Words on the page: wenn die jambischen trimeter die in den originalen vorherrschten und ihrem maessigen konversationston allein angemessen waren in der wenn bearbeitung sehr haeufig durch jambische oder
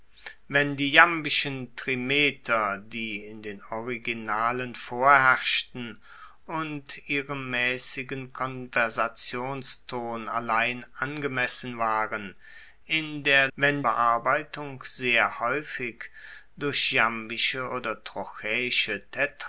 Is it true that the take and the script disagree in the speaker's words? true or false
false